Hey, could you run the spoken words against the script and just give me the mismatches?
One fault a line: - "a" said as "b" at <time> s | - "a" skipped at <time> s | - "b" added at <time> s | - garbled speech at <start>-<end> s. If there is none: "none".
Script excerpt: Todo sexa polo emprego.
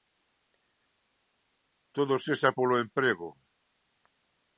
none